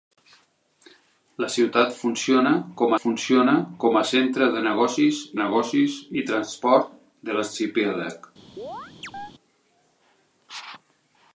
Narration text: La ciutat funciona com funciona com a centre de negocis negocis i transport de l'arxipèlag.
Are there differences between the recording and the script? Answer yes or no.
no